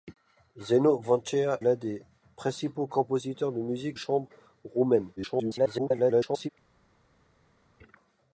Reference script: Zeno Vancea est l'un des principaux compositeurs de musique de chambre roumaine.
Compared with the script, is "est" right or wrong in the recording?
wrong